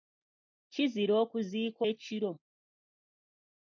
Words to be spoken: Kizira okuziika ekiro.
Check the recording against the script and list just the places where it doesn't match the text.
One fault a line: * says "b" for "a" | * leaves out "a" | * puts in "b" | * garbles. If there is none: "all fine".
all fine